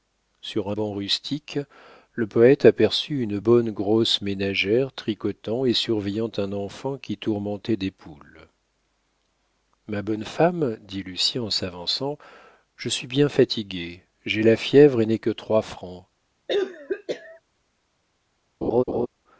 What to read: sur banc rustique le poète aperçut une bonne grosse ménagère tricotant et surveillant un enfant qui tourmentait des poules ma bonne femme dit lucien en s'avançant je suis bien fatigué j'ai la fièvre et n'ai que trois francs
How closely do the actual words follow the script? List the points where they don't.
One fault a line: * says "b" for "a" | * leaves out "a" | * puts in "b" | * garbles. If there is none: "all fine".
all fine